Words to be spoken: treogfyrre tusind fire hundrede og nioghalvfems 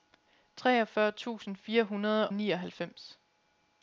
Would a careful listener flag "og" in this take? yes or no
yes